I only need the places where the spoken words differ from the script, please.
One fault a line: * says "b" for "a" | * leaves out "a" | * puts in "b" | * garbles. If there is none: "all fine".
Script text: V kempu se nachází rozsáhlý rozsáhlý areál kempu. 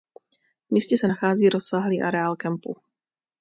* says "místě" for "kempu"
* leaves out "rozsáhlý"